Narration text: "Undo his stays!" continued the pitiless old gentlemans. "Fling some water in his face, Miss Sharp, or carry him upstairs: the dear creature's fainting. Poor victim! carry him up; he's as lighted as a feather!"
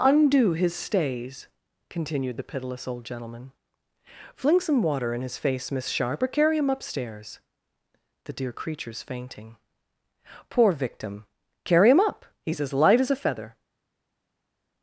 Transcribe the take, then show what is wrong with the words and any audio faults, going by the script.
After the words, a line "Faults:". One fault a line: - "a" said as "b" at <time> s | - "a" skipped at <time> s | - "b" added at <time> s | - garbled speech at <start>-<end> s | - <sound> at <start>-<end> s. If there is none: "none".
"Undo his stays!" continued the pitiless old gentleman. "Fling some water in his face, Miss Sharp, or carry him upstairs: the dear creature's fainting. Poor victim! carry him up; he's as light as a feather!"
Faults:
- "gentlemans" said as "gentleman" at 3.0 s
- "lighted" said as "light" at 12.7 s